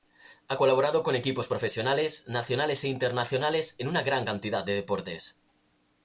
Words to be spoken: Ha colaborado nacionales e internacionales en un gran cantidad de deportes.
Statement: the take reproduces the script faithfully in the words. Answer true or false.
false